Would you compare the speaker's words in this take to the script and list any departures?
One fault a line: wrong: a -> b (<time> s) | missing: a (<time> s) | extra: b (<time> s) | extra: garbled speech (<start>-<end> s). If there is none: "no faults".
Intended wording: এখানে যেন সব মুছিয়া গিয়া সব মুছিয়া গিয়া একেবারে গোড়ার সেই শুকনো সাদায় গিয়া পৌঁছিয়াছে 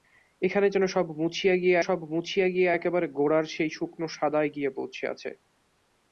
no faults